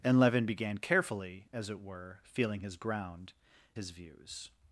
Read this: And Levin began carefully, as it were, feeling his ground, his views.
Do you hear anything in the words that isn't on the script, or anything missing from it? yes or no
no